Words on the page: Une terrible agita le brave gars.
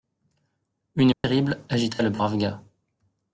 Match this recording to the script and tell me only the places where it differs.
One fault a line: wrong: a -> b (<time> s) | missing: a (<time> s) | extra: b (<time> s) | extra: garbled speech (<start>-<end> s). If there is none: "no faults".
no faults